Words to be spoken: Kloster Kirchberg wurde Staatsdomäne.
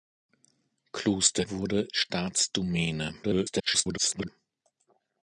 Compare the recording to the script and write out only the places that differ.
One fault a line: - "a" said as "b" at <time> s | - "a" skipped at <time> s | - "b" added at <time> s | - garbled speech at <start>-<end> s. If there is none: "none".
- "Kirchberg" skipped at 1.4 s
- garbled speech at 3.2-4.3 s